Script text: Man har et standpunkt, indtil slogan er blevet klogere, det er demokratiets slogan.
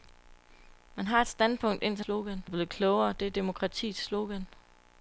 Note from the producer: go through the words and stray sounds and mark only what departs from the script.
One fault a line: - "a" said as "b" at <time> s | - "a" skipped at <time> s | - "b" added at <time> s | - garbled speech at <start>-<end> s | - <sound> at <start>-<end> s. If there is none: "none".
none